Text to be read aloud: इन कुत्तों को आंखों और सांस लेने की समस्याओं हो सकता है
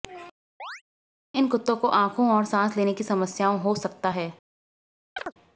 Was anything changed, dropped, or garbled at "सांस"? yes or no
no